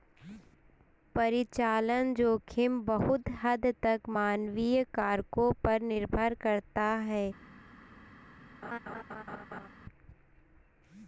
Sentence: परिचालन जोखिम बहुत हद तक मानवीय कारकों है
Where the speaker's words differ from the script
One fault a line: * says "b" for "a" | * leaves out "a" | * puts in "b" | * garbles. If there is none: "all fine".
* puts in "पर निर्भर करता"